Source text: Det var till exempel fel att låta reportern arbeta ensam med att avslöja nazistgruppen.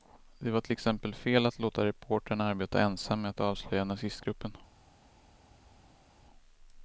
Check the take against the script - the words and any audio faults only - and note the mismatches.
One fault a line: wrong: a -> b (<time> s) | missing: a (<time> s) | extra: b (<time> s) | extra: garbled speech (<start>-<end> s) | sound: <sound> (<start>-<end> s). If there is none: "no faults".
no faults